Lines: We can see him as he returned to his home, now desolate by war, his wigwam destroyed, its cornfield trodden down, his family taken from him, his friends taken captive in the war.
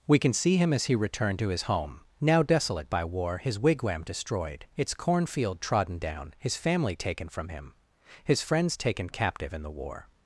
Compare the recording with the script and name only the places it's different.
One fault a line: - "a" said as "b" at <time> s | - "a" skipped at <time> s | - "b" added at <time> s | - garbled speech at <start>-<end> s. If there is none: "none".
none